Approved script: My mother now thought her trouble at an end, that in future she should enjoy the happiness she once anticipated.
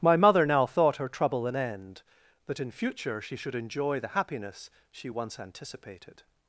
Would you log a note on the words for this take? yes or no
yes